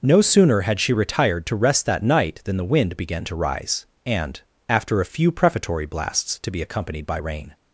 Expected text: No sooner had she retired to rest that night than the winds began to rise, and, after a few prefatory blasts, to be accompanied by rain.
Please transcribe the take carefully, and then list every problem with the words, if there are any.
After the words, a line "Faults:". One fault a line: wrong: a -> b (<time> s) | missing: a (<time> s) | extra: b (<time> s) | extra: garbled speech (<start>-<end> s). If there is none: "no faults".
No sooner had she retired to rest that night than the wind began to rise, and, after a few prefatory blasts, to be accompanied by rain.
Faults:
wrong: winds -> wind (2.6 s)